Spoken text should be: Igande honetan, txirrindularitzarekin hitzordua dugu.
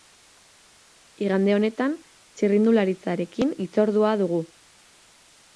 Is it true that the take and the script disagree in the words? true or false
false